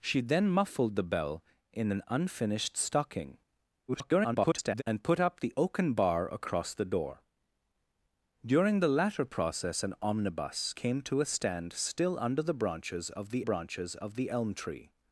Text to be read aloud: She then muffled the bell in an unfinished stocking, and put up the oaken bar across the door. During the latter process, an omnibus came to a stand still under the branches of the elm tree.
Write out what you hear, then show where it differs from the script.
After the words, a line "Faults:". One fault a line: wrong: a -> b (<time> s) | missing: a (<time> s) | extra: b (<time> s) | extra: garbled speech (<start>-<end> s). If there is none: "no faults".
She then muffled the bell in an unfinished stocking, [garbled] and put up the oaken bar across the door. During the latter process, an omnibus came to a stand still under the branches of the branches of the elm tree.
Faults:
extra: garbled speech (3.9-4.8 s)
extra: branches of the (13.4 s)